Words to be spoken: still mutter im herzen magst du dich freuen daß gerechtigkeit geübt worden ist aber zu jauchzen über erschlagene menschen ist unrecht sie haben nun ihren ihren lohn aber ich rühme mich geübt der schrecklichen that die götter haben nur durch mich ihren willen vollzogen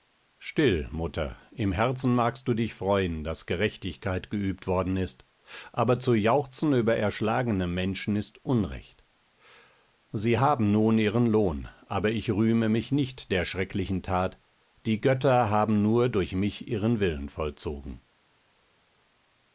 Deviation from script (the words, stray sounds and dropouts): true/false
true